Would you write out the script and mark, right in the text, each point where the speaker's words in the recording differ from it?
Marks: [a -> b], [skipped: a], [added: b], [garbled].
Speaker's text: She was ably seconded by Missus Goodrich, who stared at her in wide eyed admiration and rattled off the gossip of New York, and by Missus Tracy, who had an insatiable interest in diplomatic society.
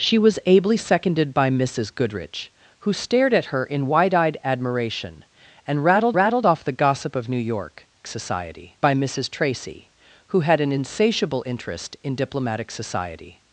She was ably seconded by Missus Goodrich, who stared at her in wide eyed admiration and rattled [added: rattled] off the gossip of New York, [and -> society] by Missus Tracy, who had an insatiable interest in diplomatic society.